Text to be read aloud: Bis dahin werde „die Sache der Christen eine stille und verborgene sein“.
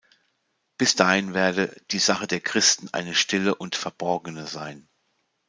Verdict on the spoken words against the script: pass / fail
pass